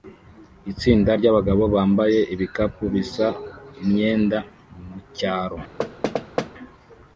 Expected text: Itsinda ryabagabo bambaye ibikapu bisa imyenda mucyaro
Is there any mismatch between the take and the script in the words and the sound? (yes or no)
yes